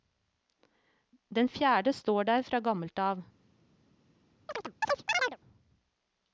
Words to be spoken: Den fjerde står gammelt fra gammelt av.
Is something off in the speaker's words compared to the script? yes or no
yes